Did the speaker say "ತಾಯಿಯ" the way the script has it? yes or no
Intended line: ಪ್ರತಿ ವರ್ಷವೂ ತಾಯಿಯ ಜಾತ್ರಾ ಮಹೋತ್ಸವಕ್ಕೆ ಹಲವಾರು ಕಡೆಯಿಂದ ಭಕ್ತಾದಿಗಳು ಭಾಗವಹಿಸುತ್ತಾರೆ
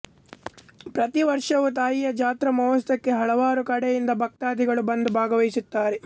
yes